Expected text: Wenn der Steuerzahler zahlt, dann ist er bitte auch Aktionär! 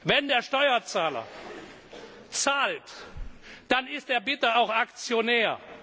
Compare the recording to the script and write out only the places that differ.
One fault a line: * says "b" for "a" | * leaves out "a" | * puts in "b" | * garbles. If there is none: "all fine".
all fine